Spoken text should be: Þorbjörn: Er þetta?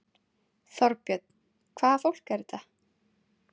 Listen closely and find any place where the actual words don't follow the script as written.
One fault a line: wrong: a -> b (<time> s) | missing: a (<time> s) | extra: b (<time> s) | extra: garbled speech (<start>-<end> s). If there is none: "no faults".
extra: Hvaða fólk (1.8 s)